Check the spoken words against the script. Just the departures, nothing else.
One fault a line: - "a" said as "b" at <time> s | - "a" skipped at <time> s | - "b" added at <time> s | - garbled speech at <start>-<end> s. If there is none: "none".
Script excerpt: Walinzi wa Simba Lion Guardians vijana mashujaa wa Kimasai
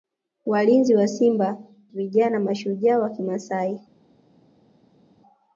- "Lion Guardians" skipped at 1.6 s